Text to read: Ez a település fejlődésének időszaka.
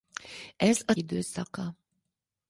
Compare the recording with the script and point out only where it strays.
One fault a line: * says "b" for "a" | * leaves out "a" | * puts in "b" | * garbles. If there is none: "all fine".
* leaves out "település fejlődésének"